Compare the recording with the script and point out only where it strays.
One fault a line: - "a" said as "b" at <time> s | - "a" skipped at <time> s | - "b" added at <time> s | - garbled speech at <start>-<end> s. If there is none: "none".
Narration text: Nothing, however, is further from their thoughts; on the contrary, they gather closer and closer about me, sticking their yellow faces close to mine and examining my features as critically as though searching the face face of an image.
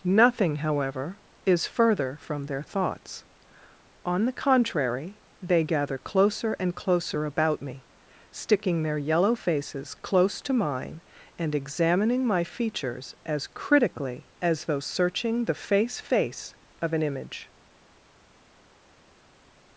none